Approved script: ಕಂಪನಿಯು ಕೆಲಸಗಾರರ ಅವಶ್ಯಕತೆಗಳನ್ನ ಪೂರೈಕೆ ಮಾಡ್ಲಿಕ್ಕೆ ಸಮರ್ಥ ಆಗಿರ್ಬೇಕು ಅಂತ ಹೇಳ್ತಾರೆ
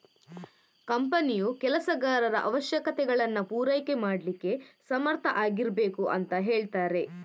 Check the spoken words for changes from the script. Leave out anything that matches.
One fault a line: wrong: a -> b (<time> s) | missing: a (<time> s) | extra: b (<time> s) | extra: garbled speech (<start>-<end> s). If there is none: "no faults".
no faults